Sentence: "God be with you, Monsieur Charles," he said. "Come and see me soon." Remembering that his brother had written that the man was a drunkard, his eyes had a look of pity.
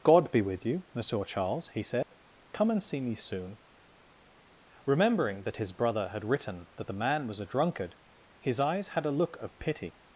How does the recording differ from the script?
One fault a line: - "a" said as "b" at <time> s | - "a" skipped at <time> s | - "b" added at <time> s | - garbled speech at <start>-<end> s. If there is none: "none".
none